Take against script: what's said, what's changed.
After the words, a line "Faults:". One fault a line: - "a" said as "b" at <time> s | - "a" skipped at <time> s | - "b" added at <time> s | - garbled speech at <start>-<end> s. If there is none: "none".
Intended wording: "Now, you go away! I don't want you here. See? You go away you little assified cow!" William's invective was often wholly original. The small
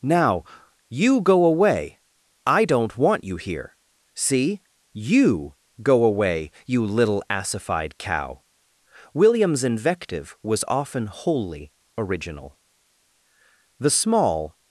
"Now, you go away! I don't want you here. See? You go away you little assified cow!" William's invective was often wholly original. The small
Faults:
none